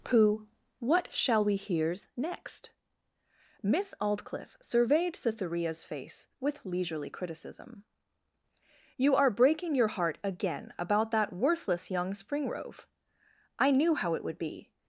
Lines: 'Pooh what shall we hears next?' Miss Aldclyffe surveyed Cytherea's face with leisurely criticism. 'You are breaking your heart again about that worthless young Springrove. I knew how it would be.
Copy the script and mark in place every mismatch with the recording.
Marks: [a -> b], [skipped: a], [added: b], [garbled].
'Pooh what shall we hears next?' Miss Aldclyffe surveyed Cytherea's face with leisurely criticism. 'You are breaking your heart again about that worthless young Springrove. I knew how it would be.